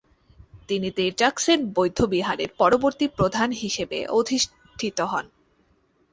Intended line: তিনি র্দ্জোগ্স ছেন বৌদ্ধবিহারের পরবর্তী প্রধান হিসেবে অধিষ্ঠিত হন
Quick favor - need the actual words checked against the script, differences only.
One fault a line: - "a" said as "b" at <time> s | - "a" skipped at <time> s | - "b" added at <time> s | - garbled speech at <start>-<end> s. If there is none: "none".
none